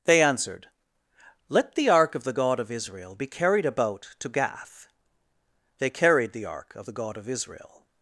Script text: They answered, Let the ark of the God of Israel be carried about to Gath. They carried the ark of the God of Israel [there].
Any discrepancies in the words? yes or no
yes